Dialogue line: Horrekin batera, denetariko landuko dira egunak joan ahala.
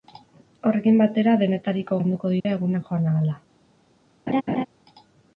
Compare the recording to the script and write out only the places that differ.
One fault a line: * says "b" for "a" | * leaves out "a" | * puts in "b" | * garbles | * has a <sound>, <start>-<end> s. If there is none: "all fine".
* has a dropout, 2.4-2.5 s
* has a laugh, 4.3-4.7 s